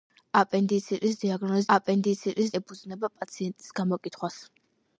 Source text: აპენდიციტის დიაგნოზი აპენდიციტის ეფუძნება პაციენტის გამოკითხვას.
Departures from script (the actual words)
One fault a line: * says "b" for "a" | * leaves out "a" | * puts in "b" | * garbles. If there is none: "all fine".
all fine